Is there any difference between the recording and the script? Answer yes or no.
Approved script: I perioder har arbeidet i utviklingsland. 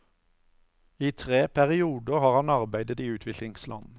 yes